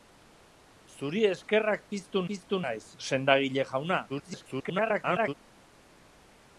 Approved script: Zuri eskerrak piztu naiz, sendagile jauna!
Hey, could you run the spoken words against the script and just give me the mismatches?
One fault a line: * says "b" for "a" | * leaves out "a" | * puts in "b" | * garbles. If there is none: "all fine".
* puts in "piztu"
* garbles